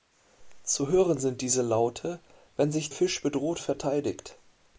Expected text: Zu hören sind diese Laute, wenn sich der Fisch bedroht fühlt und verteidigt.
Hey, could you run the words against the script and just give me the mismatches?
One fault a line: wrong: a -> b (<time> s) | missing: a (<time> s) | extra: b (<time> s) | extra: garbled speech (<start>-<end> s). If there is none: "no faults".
missing: der (2.9 s)
missing: fühlt und (3.6 s)